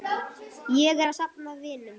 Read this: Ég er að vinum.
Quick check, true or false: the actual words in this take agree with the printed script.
false